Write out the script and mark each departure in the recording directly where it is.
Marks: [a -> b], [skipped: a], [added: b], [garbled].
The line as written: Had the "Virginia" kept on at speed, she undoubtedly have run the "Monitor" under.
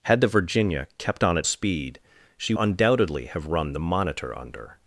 Had the "Virginia" kept on at speed, she undoubtedly have run the "Monitor" under.